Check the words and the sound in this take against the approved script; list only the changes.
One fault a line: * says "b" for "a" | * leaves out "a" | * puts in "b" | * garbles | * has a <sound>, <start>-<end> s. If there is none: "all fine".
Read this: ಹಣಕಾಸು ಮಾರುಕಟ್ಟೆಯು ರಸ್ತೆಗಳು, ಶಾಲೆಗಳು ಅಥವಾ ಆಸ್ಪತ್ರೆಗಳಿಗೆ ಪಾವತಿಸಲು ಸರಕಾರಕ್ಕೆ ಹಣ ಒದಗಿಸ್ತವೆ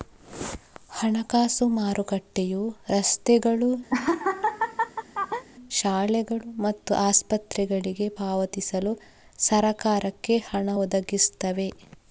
* has a laugh, 3.9-5.4 s
* says "ಮತ್ತು" for "ಅಥವಾ"